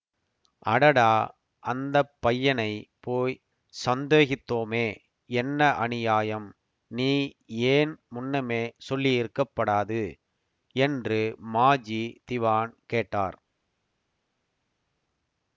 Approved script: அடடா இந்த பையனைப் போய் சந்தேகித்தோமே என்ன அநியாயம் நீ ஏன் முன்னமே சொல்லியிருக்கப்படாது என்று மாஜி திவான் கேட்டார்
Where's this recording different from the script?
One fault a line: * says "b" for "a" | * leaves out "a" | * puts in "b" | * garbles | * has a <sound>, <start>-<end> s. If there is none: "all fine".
* says "அந்த" for "இந்த"